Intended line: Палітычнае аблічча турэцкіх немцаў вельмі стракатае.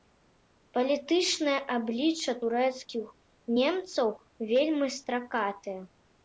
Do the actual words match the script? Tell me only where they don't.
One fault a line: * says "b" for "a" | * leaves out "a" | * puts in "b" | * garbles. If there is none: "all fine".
all fine